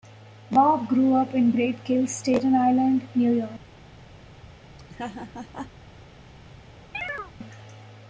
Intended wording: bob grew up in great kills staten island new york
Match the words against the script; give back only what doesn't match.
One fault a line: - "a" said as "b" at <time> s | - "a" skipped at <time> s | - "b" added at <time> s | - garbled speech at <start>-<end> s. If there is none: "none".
none